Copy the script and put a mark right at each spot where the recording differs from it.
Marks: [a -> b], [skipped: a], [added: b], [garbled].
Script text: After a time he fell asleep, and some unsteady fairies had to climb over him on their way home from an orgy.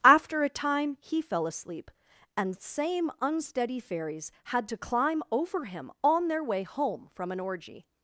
After a time he fell asleep, and [some -> same] unsteady fairies had to climb over him on their way home from an orgy.